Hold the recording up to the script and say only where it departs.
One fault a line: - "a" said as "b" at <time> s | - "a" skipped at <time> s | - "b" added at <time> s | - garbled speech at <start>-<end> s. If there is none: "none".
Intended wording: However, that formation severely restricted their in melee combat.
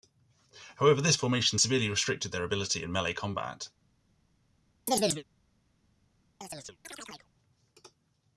- "that" said as "this" at 1.0 s
- "ability" added at 2.4 s